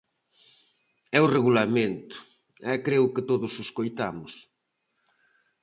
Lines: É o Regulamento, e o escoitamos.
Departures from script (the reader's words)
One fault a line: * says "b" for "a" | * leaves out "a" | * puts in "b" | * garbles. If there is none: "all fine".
* puts in "creo que todos"